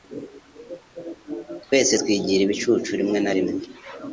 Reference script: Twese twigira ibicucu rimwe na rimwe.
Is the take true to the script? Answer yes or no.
yes